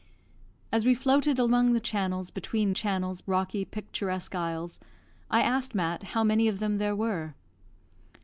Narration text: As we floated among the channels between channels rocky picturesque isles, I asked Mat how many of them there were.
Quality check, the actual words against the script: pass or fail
pass